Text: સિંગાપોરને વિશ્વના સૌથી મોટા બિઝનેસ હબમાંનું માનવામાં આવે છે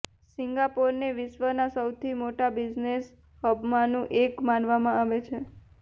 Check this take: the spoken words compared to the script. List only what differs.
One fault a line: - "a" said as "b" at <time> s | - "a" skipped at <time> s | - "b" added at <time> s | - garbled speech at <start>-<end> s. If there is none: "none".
- "એક" added at 4.2 s